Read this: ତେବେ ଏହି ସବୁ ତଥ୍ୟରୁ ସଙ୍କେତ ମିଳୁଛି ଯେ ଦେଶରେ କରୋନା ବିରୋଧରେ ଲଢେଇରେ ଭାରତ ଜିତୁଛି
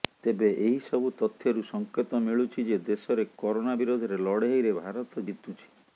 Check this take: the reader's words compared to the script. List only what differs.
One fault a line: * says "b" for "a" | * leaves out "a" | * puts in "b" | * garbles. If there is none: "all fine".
all fine